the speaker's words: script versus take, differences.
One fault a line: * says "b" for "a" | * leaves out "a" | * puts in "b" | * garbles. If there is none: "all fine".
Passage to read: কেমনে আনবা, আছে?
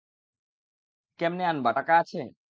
* puts in "টাকা"